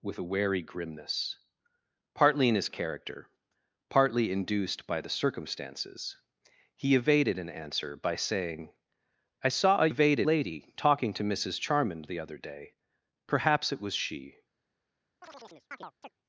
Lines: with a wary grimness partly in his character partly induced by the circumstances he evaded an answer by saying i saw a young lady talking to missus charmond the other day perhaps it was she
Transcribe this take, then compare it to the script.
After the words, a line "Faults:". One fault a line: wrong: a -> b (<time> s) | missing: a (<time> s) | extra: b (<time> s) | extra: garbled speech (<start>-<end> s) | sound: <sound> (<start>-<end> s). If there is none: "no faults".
with a wary grimness partly in his character partly induced by the circumstances he evaded an answer by saying i saw a evaded lady talking to missus charmond the other day perhaps it was she
Faults:
wrong: young -> evaded (9.9 s)
sound: chirp (15.2-16.1 s)